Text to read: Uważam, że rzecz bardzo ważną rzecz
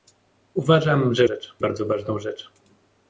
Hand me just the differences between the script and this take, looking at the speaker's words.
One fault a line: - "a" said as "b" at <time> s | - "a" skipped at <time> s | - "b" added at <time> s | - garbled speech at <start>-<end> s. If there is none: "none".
none